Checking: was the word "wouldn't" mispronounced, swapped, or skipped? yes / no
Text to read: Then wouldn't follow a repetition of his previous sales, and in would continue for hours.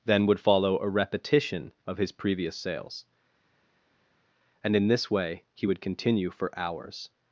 yes